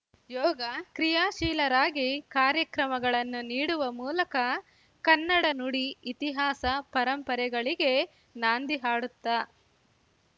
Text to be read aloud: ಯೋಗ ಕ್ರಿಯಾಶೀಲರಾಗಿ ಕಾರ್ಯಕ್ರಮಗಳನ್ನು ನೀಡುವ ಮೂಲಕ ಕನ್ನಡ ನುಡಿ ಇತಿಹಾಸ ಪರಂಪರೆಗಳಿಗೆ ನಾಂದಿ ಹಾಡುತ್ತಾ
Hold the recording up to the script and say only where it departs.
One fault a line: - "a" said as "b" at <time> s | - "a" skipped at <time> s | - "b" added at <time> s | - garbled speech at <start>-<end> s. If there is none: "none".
none